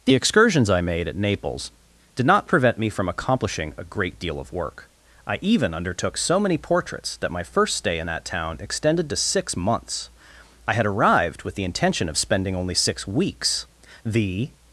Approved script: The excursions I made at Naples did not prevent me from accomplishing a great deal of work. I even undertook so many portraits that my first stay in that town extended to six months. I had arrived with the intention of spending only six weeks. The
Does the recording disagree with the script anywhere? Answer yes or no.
no